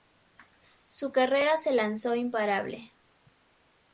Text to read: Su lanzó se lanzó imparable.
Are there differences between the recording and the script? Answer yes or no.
yes